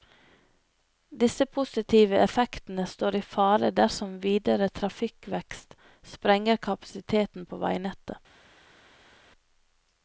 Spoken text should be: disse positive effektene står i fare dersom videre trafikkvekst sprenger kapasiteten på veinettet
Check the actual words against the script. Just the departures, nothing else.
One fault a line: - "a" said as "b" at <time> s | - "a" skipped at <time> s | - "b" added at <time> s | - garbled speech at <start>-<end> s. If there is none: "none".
none